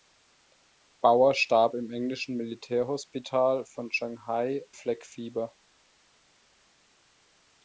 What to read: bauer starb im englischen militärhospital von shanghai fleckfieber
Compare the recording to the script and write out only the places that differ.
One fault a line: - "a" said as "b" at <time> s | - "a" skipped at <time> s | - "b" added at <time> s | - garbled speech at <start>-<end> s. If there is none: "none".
none